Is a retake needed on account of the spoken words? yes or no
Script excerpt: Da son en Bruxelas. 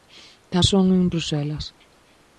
no